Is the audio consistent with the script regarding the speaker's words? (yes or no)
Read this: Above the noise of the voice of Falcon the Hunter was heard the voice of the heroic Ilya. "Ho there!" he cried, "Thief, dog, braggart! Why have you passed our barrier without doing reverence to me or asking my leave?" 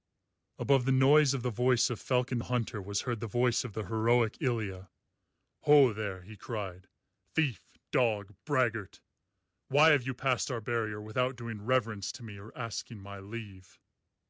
yes